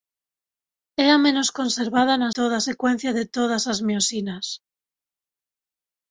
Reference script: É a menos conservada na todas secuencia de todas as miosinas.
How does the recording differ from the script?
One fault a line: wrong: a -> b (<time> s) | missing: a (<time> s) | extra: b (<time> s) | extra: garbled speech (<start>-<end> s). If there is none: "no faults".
no faults